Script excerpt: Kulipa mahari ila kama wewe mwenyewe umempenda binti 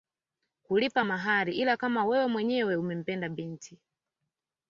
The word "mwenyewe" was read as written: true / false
true